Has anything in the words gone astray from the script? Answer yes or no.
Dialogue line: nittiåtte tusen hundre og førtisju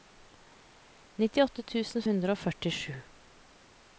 no